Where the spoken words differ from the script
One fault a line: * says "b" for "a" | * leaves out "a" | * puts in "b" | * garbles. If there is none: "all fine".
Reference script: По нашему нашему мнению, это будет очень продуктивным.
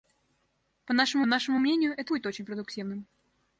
all fine